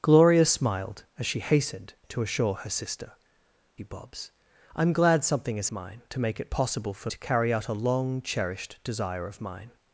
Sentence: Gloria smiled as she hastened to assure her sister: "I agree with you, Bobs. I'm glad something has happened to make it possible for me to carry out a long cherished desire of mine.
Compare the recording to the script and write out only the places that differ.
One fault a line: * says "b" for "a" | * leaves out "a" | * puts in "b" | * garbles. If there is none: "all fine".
* leaves out "I agree with"
* says "mine" for "happened"
* leaves out "me"